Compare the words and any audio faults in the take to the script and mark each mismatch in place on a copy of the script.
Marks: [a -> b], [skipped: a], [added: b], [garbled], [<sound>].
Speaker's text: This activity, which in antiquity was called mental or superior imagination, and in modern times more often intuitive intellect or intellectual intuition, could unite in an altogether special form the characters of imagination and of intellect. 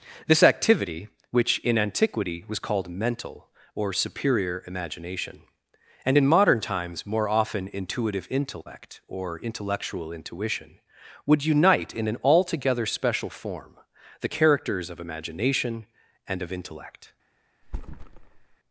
This activity, which in antiquity was called mental or superior imagination, and in modern times more often intuitive intellect or intellectual intuition, [could -> would] unite in an altogether special form the characters of imagination and of intellect. [thud]